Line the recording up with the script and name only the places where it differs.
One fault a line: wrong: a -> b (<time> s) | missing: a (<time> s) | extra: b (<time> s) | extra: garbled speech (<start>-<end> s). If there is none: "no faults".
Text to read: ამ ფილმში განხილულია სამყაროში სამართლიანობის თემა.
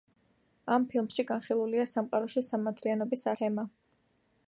no faults